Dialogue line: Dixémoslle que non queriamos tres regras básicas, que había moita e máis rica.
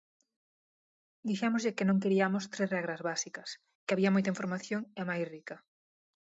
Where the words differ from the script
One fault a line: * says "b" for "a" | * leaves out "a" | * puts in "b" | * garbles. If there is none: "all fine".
* puts in "información"